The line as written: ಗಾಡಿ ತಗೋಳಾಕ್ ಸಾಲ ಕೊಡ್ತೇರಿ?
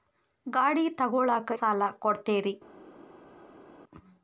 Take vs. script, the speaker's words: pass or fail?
pass